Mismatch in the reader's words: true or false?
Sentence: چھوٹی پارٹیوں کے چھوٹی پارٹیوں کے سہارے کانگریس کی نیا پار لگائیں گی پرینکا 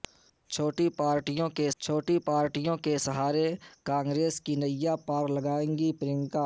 false